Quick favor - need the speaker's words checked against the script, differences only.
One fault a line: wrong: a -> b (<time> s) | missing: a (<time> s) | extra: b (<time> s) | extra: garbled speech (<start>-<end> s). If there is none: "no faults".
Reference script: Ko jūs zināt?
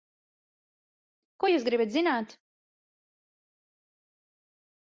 extra: gribat (1.7 s)